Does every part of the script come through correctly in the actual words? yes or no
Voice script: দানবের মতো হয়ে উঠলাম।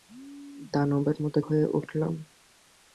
yes